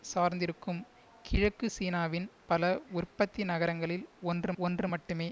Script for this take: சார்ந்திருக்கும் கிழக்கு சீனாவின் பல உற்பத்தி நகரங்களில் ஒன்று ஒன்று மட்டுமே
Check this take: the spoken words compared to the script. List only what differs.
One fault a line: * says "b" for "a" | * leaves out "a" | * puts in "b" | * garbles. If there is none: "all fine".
all fine